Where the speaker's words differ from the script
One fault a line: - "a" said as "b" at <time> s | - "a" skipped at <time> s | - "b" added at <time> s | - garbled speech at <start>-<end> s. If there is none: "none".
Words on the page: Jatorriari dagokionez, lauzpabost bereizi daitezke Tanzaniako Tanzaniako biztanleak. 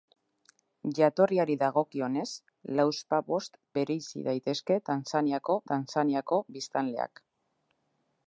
none